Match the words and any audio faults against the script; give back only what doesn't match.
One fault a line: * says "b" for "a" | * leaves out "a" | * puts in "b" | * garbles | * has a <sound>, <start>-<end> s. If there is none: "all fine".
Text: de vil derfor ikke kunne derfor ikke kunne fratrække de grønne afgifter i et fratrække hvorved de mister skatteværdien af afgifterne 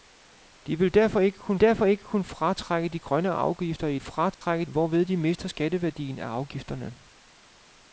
* has a dropout, 4.3-4.4 s